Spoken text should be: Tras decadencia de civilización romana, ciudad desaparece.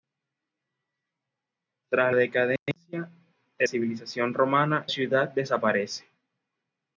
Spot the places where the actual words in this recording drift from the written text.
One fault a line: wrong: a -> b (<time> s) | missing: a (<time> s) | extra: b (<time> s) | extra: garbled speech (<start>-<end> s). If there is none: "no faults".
no faults